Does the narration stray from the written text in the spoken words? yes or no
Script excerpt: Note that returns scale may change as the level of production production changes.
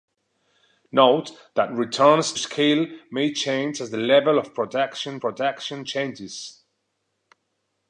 no